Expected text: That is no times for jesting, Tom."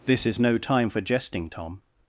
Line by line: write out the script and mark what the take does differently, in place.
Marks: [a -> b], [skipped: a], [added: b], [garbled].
[That -> This] is no [times -> time] for jesting, Tom."